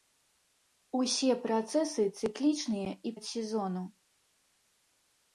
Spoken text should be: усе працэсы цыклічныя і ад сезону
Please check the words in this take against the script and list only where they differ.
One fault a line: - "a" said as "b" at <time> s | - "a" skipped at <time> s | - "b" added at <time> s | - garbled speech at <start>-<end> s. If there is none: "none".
none